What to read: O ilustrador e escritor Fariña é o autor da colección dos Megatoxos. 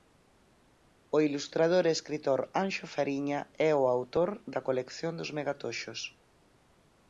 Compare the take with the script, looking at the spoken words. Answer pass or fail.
fail